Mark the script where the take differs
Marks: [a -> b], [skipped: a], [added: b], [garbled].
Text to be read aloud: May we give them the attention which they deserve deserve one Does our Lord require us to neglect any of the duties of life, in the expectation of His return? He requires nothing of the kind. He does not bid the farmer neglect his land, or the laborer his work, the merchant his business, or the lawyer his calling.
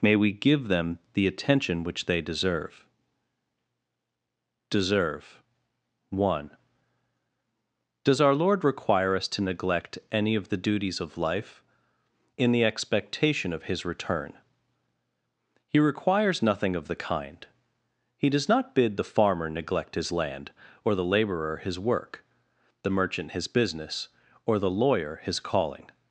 May we give them the attention which they deserve deserve one Does our Lord require us to neglect any of the duties of life, in the expectation of His return? He requires nothing of the kind. He does not bid the farmer neglect his land, or the laborer his work, the merchant his business, or the lawyer his calling.